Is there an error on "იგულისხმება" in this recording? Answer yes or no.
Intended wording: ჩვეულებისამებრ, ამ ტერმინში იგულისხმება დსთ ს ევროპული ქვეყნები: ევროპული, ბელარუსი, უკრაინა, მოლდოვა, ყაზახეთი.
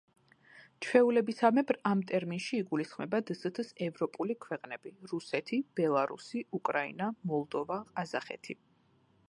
no